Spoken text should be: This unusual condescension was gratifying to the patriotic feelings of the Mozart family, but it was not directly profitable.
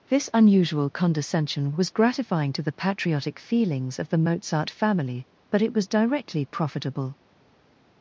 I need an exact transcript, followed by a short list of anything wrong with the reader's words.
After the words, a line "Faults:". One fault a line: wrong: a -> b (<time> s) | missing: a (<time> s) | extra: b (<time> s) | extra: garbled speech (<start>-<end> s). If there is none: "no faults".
This unusual condescension was gratifying to the patriotic feelings of the Mozart family, but it was directly profitable.
Faults:
missing: not (5.9 s)